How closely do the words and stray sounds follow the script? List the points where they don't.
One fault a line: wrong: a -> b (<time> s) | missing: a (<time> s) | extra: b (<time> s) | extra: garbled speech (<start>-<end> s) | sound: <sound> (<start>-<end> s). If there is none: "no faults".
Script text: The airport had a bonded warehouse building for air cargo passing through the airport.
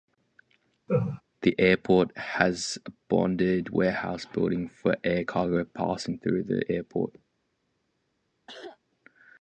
sound: laugh (0.9-1.2 s)
wrong: had -> has (2.2 s)
sound: cough (8.5-8.8 s)